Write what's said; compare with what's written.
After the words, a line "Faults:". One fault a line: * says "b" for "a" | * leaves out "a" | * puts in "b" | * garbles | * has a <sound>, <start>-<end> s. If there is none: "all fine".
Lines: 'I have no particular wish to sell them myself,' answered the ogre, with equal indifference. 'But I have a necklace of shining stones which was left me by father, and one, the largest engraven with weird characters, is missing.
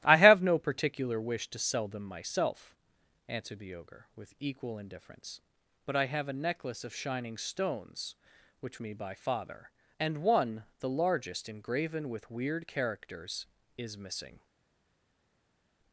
'I have no particular wish to sell them myself,' answered the ogre, with equal indifference. 'But I have a necklace of shining stones which me by father, and one, the largest engraven with weird characters, is missing.
Faults:
* leaves out "was left"